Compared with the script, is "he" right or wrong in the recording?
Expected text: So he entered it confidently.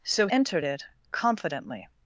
wrong